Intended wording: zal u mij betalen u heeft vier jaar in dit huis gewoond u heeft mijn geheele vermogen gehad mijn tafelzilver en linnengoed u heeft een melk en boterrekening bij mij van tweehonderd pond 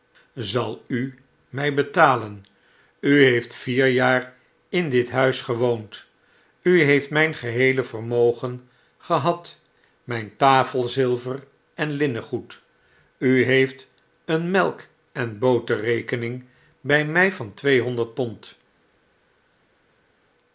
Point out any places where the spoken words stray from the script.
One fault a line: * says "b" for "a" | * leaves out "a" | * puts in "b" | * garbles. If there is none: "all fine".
all fine